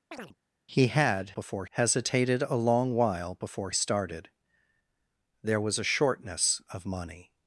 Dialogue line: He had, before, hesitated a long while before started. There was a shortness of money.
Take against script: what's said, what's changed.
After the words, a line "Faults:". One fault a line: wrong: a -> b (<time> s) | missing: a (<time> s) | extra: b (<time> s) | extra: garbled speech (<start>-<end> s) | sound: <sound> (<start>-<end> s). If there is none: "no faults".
He had, before, hesitated a long while before started. There was a shortness of money.
Faults:
sound: chirp (0.1-0.3 s)